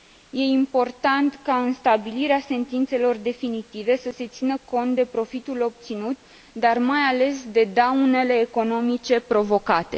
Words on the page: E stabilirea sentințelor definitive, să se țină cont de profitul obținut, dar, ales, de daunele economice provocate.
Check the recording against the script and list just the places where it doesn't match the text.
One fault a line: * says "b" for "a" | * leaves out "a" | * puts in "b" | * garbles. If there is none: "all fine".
* puts in "important ca în"
* puts in "mai"